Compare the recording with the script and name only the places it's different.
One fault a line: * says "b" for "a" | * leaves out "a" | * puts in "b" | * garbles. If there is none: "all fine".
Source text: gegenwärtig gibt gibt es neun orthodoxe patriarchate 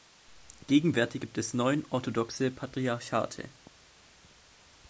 * leaves out "gibt"